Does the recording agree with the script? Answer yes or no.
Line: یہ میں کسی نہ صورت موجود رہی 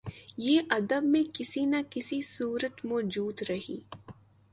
no